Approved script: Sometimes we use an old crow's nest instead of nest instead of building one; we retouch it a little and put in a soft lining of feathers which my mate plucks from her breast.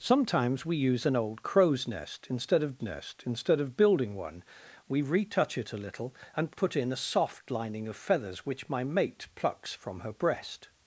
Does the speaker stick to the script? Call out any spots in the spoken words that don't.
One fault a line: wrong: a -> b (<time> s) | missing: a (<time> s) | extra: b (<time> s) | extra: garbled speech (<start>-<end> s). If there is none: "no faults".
no faults